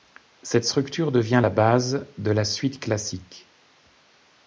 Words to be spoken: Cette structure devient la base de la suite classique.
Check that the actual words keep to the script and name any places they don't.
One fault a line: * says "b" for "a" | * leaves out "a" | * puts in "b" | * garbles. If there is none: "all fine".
all fine